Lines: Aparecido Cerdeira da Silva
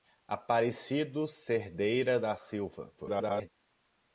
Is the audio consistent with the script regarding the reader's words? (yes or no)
no